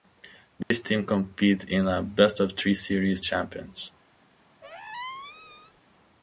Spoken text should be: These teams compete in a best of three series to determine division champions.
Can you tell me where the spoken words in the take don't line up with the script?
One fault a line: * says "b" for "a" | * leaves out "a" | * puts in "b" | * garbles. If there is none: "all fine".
* leaves out "to determine division"